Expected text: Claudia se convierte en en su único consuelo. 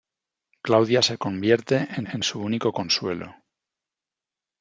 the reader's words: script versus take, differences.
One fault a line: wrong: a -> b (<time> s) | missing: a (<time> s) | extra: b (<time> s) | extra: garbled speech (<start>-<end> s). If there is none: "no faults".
no faults